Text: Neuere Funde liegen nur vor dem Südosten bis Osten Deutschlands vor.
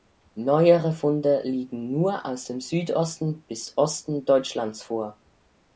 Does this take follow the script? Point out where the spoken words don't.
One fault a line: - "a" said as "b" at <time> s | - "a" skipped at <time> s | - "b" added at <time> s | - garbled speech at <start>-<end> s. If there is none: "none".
- "vor" said as "aus" at 2.2 s